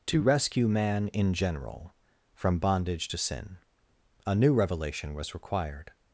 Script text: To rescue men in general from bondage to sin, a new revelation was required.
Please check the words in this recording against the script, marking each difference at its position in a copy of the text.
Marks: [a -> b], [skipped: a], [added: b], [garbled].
To rescue [men -> man] in general from bondage to sin, a new revelation was required.